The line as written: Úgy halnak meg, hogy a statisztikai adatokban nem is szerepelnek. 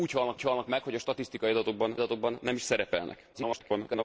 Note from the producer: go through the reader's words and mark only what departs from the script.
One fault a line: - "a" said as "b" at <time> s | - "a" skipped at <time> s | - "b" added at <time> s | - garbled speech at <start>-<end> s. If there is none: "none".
- "úgy halnak" added at 0.3 s
- "adatokban" added at 1.9 s
- garbled speech at 3.3-4.0 s